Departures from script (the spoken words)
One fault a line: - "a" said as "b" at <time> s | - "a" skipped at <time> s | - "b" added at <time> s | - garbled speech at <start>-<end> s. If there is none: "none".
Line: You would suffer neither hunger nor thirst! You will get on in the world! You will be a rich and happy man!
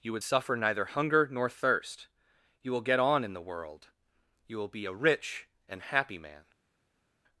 none